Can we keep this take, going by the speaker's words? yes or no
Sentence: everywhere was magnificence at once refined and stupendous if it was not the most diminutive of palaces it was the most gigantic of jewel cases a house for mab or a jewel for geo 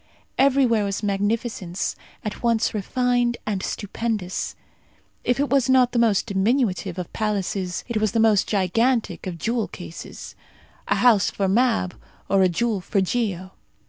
yes